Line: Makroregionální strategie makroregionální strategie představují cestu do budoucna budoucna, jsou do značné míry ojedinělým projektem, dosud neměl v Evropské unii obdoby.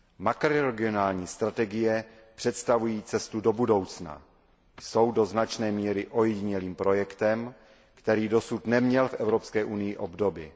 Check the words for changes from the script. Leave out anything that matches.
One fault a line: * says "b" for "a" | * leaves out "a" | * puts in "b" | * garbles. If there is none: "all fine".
* leaves out "makroregionální strategie"
* leaves out "budoucna"
* puts in "který"